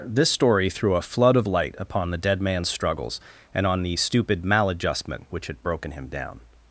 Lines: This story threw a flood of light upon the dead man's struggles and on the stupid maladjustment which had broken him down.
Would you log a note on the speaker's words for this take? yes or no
no